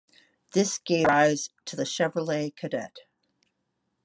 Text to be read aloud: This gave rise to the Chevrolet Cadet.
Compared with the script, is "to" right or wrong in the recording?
right